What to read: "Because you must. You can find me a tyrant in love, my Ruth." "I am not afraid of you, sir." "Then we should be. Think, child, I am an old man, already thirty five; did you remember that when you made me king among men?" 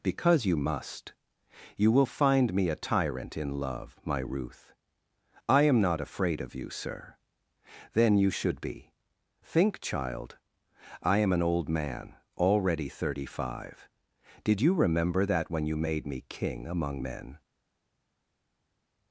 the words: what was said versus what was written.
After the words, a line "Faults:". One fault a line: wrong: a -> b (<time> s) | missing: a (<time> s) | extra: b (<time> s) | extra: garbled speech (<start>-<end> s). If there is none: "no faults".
"Because you must. You will find me a tyrant in love, my Ruth." "I am not afraid of you, sir." "Then you should be. Think, child, I am an old man, already thirty five; did you remember that when you made me king among men?"
Faults:
wrong: can -> will (1.9 s)
wrong: we -> you (8.2 s)